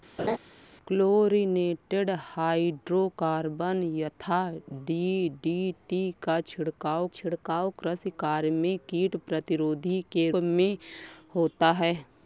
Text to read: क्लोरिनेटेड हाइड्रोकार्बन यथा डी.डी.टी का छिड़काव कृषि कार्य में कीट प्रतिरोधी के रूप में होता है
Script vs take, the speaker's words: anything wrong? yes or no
yes